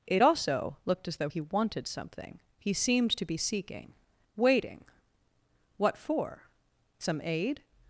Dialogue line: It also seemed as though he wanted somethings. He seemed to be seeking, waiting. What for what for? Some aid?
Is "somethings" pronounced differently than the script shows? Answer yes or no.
yes